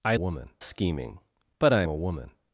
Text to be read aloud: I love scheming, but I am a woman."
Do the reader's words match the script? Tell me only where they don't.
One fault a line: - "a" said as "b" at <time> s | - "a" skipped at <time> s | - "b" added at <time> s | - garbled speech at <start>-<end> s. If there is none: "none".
- "love" said as "woman" at 0.1 s
- "am" skipped at 1.8 s